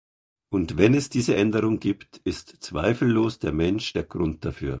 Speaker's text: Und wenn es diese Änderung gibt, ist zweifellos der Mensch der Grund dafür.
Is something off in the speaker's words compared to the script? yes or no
no